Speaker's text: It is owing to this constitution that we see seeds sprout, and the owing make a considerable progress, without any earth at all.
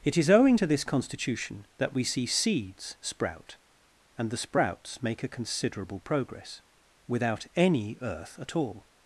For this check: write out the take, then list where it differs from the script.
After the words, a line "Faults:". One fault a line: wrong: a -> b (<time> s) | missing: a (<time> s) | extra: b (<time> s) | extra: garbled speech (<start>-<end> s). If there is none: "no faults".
It is owing to this constitution that we see seeds sprout, and the sprouts make a considerable progress, without any earth at all.
Faults:
wrong: owing -> sprouts (4.4 s)